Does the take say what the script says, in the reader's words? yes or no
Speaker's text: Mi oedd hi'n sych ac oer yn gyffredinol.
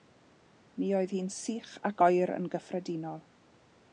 yes